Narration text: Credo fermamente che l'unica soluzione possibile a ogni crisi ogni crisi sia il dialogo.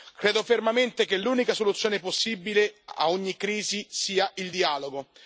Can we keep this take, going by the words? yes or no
no